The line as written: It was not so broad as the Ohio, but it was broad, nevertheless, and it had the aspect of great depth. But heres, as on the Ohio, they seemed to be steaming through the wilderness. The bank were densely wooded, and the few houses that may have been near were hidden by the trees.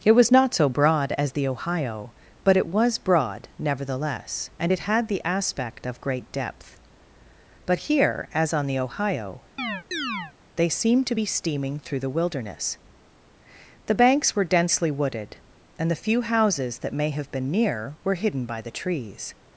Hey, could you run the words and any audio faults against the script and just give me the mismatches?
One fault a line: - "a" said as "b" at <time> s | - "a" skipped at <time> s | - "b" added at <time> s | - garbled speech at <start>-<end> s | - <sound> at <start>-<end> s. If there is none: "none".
- "heres" said as "here" at 7.8 s
- chirp at 9.6-10.3 s
- "bank" said as "banks" at 13.9 s